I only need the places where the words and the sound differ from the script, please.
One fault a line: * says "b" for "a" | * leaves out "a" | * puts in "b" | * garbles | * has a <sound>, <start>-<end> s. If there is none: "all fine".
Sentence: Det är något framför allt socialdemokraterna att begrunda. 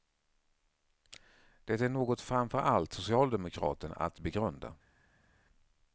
all fine